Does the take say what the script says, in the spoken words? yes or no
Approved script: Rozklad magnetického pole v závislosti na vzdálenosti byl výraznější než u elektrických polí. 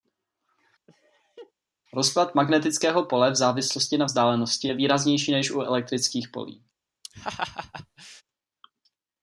no